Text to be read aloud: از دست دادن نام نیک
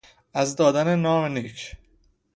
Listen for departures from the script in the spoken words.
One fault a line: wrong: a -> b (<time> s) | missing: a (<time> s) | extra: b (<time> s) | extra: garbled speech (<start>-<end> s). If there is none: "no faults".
missing: دست (0.6 s)